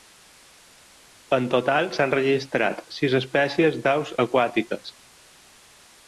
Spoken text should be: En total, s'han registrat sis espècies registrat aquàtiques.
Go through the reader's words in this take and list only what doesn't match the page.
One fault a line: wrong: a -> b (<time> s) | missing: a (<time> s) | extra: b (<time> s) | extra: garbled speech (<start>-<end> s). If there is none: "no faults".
wrong: registrat -> d'aus (3.9 s)